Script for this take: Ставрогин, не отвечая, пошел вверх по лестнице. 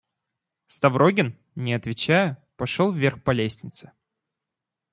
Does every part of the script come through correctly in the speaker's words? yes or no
yes